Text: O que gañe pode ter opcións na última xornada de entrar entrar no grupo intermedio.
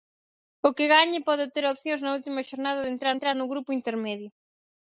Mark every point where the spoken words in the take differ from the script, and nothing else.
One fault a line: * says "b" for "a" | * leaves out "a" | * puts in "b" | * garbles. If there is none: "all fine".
all fine